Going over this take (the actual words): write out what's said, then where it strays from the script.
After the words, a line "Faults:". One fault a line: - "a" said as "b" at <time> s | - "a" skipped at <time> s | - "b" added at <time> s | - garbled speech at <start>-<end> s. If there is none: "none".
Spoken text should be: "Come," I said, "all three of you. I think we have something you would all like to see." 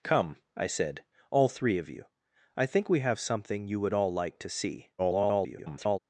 "Come," I said, "all three of you. I think we have something you would all like to see." [garbled]
Faults:
- garbled speech at 5.0-6.0 s